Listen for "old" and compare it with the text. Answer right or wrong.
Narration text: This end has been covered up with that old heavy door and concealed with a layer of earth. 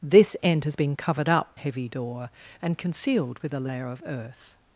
wrong